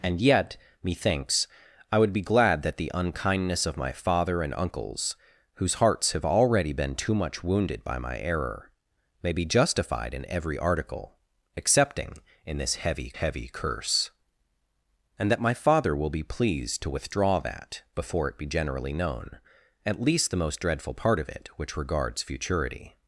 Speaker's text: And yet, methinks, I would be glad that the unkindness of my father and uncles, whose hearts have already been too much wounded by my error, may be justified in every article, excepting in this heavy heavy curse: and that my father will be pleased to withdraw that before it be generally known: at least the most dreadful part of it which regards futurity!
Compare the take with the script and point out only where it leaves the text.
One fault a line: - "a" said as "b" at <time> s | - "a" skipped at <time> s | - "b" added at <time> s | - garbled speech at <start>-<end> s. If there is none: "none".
none